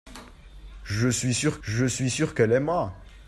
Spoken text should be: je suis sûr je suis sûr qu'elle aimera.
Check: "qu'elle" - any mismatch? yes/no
no